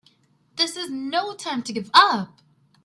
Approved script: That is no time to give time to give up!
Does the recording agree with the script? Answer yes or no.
no